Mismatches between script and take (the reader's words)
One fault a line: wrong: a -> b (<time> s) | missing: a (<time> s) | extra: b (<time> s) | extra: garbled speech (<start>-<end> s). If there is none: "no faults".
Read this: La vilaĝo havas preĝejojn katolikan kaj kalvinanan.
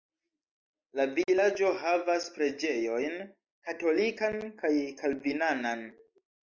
no faults